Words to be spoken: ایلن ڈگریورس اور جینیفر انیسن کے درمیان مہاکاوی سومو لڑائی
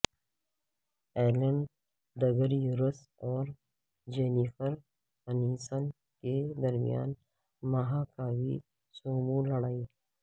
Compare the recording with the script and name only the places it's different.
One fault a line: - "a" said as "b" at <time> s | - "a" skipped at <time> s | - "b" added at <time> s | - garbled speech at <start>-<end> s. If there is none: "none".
none